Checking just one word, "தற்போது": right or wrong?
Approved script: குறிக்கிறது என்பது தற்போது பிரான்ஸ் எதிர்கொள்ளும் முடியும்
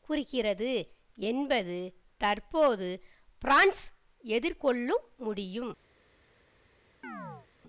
right